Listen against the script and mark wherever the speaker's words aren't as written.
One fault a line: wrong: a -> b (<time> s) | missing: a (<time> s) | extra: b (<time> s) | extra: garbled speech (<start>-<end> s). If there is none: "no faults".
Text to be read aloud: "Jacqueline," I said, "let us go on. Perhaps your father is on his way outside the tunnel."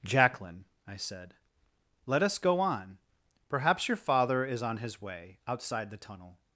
no faults